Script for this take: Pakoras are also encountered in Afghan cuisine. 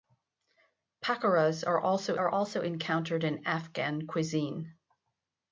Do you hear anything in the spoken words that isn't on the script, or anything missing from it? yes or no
yes